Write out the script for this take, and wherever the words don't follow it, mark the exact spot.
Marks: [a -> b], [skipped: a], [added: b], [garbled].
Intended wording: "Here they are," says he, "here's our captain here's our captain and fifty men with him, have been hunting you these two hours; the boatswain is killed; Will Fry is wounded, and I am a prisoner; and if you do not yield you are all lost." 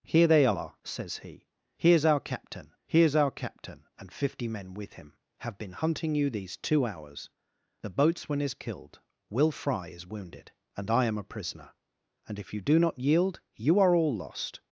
"Here they are," says he, "here's our captain here's our captain and fifty men with him, have been hunting you these two hours; the boatswain is killed; Will Fry is wounded, and I am a prisoner; and if you do not yield you are all lost."